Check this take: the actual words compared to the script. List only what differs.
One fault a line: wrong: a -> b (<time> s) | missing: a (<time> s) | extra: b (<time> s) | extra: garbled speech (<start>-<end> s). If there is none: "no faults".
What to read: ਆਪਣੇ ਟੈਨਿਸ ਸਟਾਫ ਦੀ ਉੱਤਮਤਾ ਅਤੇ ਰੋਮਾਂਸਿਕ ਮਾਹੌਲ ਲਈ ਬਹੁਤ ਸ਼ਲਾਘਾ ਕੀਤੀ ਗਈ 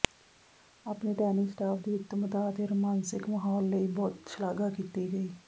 no faults